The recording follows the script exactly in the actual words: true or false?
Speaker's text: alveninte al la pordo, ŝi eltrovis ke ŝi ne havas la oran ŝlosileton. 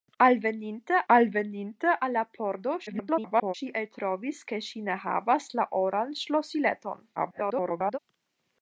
false